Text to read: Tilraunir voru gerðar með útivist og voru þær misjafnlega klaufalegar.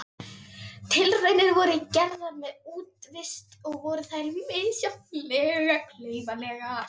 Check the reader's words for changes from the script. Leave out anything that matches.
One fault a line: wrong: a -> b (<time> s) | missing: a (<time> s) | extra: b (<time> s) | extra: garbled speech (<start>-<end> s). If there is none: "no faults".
no faults